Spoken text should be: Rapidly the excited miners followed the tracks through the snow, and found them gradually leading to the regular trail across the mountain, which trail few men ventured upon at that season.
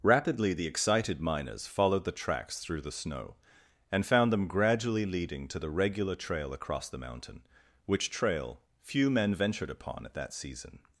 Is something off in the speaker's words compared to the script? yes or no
no